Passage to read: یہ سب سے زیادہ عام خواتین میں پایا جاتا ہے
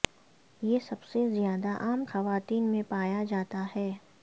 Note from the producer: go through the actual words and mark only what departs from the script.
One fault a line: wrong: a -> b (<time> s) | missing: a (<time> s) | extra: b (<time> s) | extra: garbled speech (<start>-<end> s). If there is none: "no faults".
no faults